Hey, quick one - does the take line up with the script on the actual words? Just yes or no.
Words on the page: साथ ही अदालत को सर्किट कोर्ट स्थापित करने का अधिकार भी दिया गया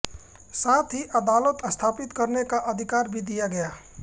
no